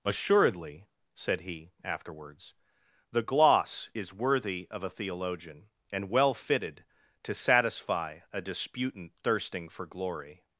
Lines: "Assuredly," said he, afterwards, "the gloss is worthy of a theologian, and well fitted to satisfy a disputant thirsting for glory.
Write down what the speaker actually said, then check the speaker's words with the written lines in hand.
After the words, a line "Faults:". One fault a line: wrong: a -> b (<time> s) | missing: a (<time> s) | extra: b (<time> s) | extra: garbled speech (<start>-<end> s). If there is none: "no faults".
"Assuredly," said he, afterwards, "the gloss is worthy of a theologian, and well fitted to satisfy a disputant thirsting for glory.
Faults:
no faults